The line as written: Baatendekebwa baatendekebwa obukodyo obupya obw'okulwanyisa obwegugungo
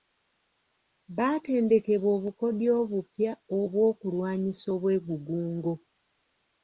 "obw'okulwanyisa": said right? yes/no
yes